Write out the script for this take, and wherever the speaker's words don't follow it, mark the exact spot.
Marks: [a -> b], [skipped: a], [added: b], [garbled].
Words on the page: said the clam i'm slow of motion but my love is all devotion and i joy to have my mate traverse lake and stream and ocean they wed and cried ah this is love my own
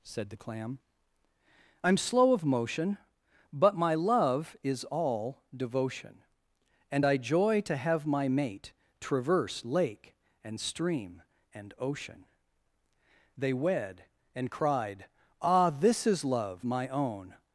said the clam i'm slow of motion but my love is all devotion and i joy to have my mate traverse lake and stream and ocean they wed and cried ah this is love my own